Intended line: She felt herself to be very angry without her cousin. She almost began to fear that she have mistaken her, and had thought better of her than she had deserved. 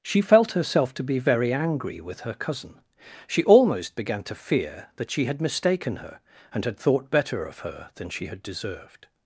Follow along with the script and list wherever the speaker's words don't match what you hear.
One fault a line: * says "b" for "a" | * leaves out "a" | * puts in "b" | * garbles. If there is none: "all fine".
* says "with" for "without"
* says "had" for "have"